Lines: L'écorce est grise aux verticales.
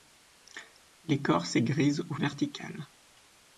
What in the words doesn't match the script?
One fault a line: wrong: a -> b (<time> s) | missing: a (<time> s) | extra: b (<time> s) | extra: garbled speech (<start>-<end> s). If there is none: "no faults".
no faults